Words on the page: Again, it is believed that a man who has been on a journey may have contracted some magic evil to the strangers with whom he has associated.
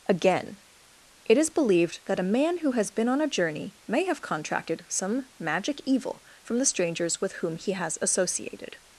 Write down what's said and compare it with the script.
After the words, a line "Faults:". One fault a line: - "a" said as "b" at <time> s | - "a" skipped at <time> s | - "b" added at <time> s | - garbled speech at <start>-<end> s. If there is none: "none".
Again, it is believed that a man who has been on a journey may have contracted some magic evil from the strangers with whom he has associated.
Faults:
- "to" said as "from" at 6.4 s